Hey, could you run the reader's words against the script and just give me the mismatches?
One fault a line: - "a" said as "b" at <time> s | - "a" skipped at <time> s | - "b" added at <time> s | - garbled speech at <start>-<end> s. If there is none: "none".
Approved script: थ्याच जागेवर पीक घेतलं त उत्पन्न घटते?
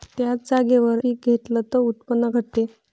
none